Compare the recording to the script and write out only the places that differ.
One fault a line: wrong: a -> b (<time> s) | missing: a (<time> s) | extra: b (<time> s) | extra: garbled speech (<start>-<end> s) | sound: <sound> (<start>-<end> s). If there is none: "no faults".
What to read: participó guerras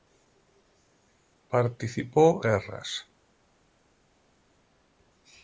no faults